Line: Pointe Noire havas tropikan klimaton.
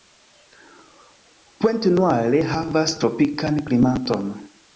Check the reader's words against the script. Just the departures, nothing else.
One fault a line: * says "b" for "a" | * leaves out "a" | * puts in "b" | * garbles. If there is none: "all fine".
all fine